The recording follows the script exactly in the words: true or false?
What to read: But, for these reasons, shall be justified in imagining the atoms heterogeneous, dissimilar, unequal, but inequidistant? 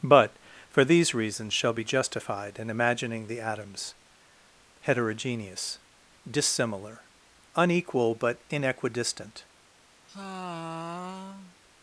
true